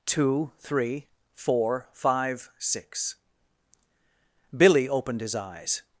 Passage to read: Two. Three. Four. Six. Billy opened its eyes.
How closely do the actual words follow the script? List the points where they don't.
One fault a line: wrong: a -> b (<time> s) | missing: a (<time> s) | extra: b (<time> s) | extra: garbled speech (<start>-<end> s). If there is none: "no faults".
extra: Five (1.9 s)
wrong: its -> his (5.2 s)